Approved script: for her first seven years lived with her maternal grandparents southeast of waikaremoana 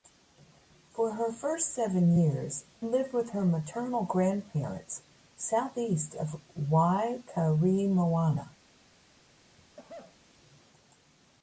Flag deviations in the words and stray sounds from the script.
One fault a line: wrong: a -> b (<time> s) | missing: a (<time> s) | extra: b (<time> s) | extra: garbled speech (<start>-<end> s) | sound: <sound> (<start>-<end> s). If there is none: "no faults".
sound: cough (9.6-10.2 s)